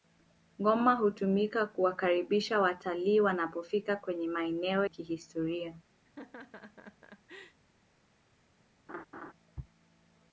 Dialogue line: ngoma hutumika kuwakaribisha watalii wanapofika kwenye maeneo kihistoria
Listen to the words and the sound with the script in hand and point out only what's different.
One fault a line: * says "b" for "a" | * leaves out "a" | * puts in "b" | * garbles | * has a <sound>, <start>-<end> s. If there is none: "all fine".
* has a laugh, 6.0-7.6 s
* has a laugh, 8.9-9.3 s